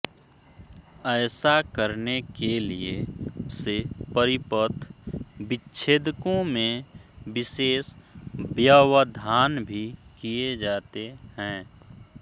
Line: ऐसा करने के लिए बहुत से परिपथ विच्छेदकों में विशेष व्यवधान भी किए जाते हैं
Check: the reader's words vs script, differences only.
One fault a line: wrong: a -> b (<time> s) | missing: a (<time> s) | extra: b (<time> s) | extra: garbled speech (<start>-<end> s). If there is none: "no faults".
missing: बहुत (2.9 s)